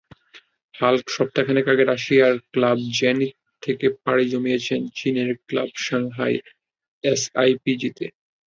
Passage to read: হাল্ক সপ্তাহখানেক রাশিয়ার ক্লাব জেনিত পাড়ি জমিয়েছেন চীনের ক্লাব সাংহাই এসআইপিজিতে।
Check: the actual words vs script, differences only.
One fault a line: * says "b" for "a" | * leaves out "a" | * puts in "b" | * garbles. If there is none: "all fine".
* puts in "আগে"
* puts in "থেকে"